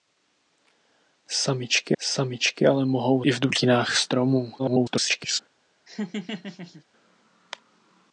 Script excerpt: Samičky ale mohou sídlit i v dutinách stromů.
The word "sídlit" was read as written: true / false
false